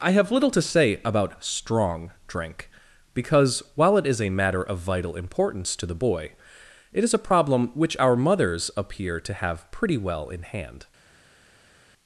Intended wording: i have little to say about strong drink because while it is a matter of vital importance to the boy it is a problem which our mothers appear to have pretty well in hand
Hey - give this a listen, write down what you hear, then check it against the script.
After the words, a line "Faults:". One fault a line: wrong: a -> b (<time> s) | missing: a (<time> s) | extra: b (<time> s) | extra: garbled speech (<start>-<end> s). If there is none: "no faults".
i have little to say about strong drink because while it is a matter of vital importance to the boy it is a problem which our mothers appear to have pretty well in hand
Faults:
no faults